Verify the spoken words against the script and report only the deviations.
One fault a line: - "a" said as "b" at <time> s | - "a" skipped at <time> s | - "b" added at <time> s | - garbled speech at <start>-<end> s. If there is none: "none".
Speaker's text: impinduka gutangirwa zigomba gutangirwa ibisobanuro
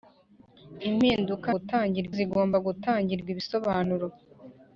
none